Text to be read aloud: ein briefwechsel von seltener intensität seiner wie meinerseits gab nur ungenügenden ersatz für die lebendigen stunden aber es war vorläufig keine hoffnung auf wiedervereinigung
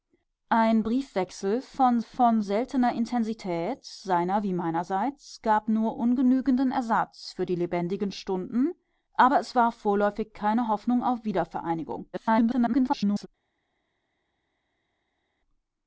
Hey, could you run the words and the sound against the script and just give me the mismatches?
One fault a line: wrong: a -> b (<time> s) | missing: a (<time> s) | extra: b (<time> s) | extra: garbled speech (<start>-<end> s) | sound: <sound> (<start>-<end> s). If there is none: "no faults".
extra: von (2.0 s)
extra: garbled speech (12.1-13.3 s)